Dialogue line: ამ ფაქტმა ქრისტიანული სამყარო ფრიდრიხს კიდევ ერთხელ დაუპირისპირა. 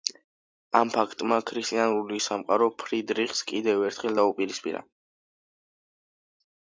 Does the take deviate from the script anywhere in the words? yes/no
no